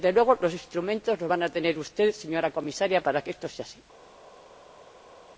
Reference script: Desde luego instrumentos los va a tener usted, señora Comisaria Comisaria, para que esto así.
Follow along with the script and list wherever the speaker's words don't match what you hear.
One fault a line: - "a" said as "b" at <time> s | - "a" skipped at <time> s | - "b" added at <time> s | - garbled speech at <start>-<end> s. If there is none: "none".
- "los" added at 0.4 s
- "Comisaria" skipped at 3.0 s
- "sea" added at 3.5 s